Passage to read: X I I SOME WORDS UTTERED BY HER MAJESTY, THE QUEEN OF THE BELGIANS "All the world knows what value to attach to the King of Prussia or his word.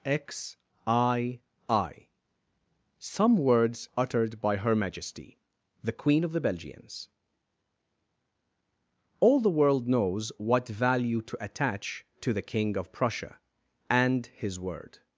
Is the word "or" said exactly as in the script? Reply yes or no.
no